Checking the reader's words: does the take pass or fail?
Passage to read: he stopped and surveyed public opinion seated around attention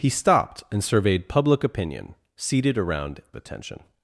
pass